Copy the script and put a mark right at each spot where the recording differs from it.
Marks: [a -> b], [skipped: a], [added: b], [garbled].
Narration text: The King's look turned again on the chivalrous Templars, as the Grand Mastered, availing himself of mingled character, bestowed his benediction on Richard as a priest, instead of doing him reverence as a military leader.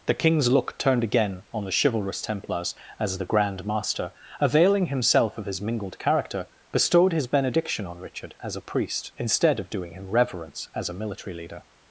The King's look turned again on the chivalrous Templars, as the Grand [Mastered, -> Master] availing himself of [added: his] mingled character, bestowed his benediction on Richard as a priest, instead of doing him reverence as a military leader.